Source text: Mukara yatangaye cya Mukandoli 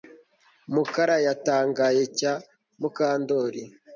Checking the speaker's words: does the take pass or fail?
pass